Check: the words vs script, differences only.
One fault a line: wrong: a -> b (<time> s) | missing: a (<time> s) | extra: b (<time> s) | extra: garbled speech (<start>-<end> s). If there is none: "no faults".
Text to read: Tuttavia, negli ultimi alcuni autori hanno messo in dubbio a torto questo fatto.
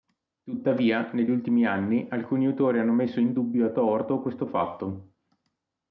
extra: anni (1.6 s)